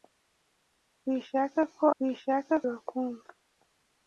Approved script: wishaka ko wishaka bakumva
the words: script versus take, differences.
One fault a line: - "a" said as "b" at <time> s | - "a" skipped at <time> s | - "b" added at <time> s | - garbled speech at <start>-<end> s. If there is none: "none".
none